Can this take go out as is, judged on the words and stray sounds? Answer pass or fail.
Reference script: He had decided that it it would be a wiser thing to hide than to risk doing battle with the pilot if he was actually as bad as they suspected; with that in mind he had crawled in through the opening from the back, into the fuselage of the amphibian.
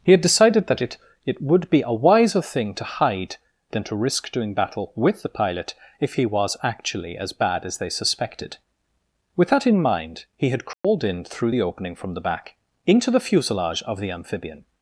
fail